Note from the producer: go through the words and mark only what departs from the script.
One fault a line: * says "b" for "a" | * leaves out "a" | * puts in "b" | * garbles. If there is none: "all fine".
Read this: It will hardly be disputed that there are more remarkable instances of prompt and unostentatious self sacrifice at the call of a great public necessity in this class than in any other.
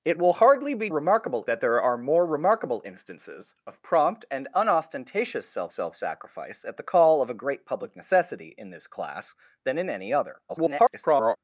* says "remarkable" for "disputed"
* puts in "self"
* garbles